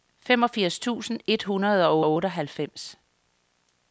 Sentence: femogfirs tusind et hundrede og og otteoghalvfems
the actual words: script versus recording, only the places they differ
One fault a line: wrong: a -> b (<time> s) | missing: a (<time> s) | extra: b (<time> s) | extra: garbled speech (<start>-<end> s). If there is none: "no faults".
no faults